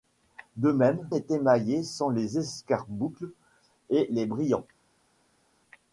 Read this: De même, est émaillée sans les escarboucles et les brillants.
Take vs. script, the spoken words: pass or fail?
pass